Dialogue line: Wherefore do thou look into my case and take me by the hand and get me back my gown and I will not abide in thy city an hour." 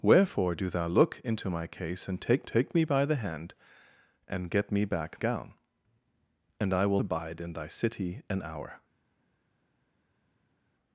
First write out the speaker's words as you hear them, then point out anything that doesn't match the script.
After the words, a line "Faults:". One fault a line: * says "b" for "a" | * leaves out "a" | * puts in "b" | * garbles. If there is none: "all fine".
Wherefore do thou look into my case and take take me by the hand and get me back gown and I will abide in thy city an hour."
Faults:
* puts in "take"
* leaves out "my"
* leaves out "not"